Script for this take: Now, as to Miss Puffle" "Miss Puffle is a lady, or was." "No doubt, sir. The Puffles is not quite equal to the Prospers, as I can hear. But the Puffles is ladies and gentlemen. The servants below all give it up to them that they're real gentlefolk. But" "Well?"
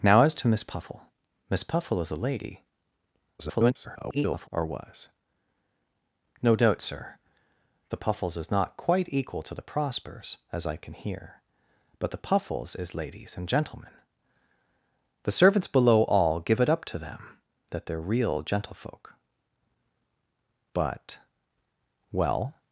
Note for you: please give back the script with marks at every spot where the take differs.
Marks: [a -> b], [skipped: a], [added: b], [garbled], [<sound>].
Now, as to Miss Puffle" "Miss Puffle is a lady, [garbled] or was." "No doubt, sir. The Puffles is not quite equal to the Prospers, as I can hear. But the Puffles is ladies and gentlemen. The servants below all give it up to them that they're real gentlefolk. But" "Well?"